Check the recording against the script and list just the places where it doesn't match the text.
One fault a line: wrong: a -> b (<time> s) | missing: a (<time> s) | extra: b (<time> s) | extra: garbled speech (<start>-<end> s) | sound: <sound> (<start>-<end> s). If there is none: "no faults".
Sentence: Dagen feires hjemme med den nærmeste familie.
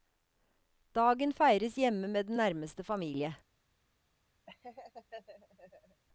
sound: laugh (4.5-6.0 s)